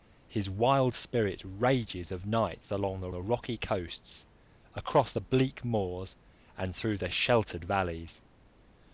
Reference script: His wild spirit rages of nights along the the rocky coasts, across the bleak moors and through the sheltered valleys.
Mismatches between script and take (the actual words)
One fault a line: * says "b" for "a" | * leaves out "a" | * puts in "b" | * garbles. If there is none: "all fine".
all fine